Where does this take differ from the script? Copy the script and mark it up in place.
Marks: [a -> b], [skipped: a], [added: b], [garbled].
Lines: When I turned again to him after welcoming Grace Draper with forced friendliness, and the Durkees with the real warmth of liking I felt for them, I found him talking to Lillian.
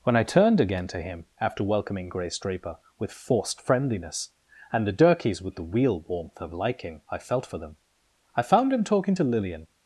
When I turned again to him after welcoming Grace Draper with forced friendliness, and the Durkees with the real warmth of liking I felt for them, I found him talking to Lillian.